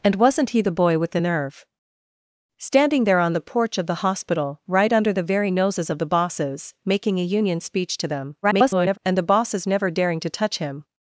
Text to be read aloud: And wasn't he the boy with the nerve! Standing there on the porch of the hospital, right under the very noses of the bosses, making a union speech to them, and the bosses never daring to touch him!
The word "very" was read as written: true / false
true